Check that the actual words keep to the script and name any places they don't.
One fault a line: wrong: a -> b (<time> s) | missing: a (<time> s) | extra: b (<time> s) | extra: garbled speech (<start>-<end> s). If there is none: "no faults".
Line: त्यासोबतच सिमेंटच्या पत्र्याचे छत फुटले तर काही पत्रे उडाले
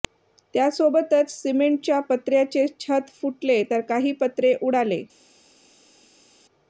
no faults